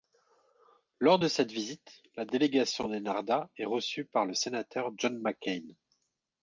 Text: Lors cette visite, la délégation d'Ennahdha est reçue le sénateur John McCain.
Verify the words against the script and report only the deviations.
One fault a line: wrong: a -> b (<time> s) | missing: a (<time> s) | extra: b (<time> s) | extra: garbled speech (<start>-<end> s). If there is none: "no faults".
extra: de (1.2 s)
extra: par (4.1 s)